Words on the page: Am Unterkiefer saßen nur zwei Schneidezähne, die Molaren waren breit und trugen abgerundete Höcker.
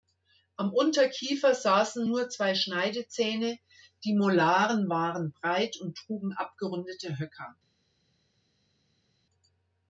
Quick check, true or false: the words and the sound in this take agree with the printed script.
true